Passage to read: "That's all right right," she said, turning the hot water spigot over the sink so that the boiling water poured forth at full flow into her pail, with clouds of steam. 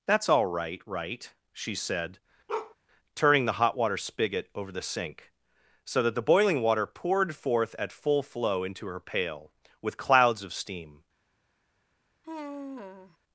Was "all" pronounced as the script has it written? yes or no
yes